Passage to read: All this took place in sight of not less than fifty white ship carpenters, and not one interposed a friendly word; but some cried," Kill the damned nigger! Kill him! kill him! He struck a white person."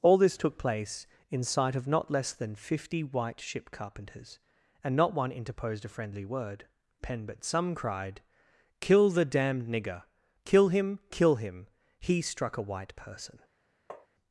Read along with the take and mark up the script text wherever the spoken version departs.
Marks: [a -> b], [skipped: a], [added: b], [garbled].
All this took place in sight of not less than fifty white ship carpenters, and not one interposed a friendly word; [added: pen] but some cried," Kill the damned nigger! Kill him! kill him! He struck a white person."